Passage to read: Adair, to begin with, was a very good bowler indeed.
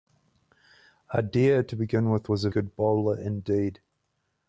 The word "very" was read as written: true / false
false